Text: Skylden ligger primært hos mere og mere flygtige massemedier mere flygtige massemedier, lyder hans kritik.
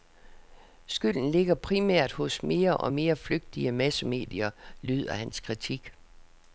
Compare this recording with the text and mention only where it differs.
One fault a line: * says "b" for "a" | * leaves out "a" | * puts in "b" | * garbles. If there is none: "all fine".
* leaves out "mere flygtige massemedier"